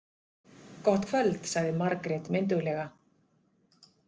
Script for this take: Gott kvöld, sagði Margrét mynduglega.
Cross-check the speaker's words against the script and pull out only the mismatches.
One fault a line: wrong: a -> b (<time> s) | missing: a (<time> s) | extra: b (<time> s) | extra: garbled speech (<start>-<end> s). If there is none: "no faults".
no faults